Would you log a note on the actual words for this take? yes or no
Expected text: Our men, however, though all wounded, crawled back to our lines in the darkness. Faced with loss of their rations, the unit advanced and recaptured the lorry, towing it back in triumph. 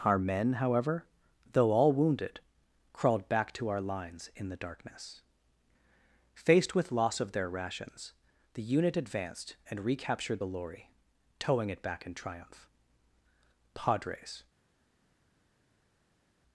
yes